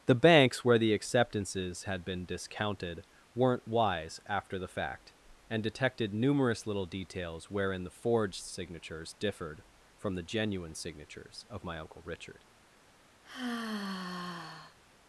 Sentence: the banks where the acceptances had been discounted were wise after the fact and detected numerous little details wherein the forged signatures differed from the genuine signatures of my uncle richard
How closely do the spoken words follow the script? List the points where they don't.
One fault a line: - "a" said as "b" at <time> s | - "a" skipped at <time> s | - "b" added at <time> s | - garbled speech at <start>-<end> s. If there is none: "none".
- "were" said as "weren't" at 3.3 s